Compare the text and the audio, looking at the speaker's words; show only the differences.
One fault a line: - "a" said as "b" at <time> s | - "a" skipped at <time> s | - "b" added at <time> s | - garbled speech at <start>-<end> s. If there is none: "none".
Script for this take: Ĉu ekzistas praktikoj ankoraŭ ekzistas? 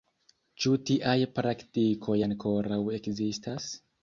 - "ekzistas" said as "tiaj" at 0.9 s